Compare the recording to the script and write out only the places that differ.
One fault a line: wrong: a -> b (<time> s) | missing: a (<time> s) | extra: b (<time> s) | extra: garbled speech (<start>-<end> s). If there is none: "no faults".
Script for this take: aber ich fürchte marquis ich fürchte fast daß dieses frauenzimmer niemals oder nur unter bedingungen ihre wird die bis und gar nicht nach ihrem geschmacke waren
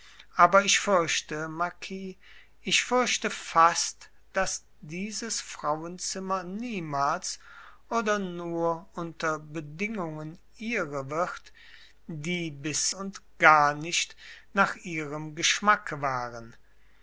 no faults